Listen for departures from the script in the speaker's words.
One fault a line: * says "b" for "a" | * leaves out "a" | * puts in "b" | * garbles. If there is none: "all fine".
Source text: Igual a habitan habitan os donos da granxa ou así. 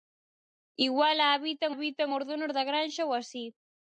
all fine